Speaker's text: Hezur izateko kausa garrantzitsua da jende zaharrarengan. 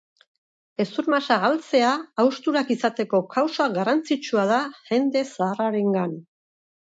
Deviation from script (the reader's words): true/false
true